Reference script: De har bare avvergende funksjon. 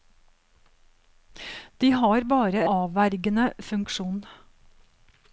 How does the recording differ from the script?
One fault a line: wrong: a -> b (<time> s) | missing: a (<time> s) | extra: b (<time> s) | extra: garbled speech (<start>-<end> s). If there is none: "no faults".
no faults